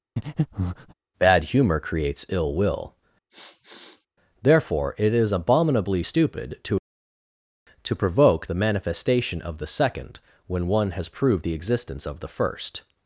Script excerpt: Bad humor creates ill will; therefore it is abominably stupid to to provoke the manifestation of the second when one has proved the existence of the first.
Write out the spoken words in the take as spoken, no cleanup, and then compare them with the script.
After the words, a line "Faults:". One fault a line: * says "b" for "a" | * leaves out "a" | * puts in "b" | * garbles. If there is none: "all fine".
Bad humor creates ill will; therefore it is abominably stupid to to provoke the manifestation of the second when one has proved the existence of the first.
Faults:
all fine